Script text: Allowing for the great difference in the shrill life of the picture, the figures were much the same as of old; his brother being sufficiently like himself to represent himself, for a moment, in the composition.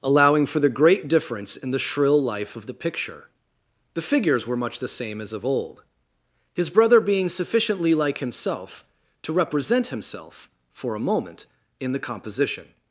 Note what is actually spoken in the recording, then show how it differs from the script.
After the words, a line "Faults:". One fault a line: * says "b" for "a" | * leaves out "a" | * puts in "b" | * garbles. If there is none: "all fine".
Allowing for the great difference in the shrill life of the picture, the figures were much the same as of old; his brother being sufficiently like himself to represent himself, for a moment, in the composition.
Faults:
all fine